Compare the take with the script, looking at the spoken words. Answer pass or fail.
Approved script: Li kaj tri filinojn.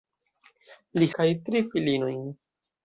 pass